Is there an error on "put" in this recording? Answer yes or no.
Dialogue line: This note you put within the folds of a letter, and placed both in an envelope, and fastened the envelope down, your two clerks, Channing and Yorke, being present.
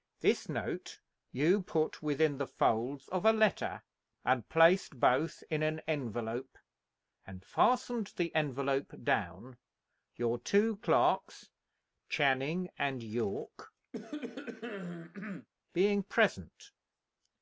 no